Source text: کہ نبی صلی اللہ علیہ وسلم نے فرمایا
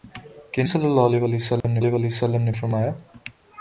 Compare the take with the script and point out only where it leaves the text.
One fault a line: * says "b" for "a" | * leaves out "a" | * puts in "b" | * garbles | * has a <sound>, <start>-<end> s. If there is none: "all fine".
* leaves out "نبی"
* has a dropout, 1.6-1.6 s
* puts in "علیہ وسلم نے"